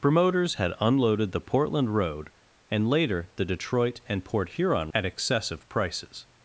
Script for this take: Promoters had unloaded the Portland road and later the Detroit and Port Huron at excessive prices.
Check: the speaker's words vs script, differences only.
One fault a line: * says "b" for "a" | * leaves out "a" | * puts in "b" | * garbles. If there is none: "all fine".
all fine